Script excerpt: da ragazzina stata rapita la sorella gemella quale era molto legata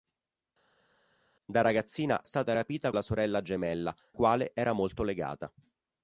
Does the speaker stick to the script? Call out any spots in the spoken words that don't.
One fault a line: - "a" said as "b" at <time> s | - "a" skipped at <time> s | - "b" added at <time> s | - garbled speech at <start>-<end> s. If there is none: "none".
none